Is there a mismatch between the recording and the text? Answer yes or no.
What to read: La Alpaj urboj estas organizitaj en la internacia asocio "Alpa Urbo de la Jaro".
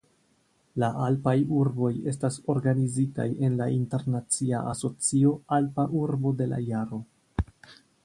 no